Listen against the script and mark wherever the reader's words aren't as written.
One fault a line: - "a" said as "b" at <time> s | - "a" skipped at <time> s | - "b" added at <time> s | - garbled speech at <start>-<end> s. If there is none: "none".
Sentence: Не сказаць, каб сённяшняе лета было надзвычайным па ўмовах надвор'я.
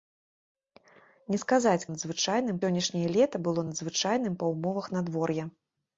- "каб" said as "надзвычайным" at 1.9 s